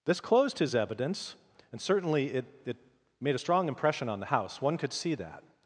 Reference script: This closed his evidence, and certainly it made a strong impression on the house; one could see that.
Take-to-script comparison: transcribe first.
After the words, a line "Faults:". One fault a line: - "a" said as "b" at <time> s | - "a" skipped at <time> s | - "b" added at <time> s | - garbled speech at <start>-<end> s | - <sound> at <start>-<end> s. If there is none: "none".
This closed his evidence, and certainly it it made a strong impression on the house; one could see that.
Faults:
- "it" added at 2.6 s